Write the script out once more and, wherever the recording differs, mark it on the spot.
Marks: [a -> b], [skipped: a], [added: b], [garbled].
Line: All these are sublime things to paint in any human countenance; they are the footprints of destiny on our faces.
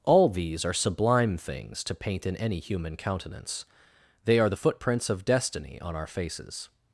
All these are sublime things to paint in any human countenance; they are the footprints of destiny on our faces.